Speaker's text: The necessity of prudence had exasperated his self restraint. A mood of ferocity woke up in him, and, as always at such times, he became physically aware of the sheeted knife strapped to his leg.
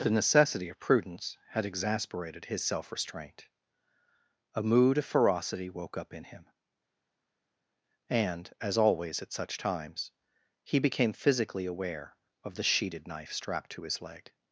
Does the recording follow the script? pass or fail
pass